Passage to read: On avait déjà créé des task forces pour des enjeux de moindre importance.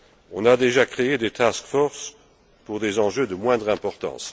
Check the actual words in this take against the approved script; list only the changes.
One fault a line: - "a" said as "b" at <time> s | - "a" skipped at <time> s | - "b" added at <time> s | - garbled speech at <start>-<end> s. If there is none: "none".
- "avait" said as "a" at 0.5 s